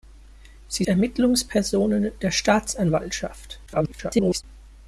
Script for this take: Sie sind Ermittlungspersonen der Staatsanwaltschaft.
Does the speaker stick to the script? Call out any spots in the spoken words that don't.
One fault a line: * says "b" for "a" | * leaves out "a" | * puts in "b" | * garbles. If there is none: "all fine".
* leaves out "sind"
* garbles